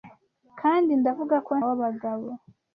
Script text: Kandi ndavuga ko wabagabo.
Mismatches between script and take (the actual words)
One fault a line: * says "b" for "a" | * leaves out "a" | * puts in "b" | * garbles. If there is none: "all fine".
all fine